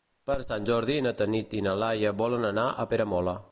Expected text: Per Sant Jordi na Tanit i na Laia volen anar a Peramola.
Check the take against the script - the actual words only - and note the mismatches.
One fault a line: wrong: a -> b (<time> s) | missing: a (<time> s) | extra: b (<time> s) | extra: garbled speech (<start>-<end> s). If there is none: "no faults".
no faults